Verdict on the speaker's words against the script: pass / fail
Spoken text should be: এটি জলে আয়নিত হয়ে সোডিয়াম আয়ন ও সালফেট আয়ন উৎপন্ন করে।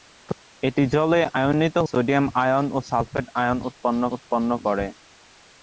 fail